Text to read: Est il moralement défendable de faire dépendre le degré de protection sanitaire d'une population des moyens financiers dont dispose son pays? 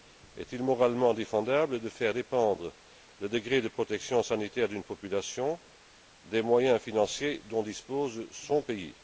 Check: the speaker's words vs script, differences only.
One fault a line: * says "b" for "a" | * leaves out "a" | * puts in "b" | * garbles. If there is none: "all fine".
all fine